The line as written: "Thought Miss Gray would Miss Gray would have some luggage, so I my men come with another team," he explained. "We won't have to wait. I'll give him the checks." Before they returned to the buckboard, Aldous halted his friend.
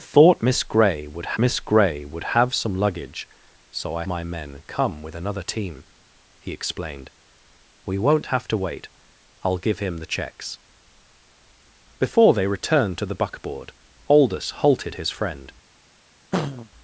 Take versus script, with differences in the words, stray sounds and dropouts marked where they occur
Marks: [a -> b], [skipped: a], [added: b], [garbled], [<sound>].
"Thought Miss Gray would Miss Gray would have some luggage, so I my men come with another team," he explained. "We won't have to wait. I'll give him the checks." Before they returned to the buckboard, Aldous halted his friend. [throat clearing]